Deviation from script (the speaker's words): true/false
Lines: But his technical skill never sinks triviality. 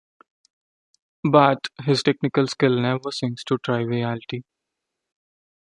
true